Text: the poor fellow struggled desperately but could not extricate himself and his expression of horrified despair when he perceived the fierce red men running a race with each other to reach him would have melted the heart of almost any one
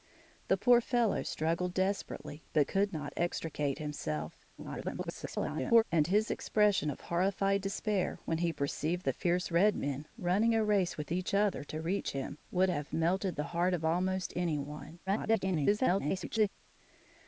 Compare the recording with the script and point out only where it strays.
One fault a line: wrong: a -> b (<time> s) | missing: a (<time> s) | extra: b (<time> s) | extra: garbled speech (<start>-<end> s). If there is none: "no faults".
extra: garbled speech (4.6-5.8 s)
extra: garbled speech (15.1-16.5 s)